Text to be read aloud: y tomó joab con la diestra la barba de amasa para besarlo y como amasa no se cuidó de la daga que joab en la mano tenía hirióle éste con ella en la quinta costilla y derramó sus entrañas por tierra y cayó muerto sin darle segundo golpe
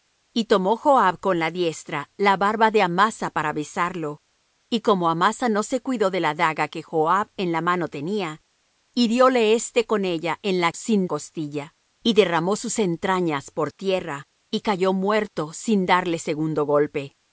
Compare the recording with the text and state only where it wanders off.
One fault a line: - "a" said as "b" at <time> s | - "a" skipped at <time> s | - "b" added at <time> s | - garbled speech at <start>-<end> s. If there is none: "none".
- "quinta" said as "sin" at 10.7 s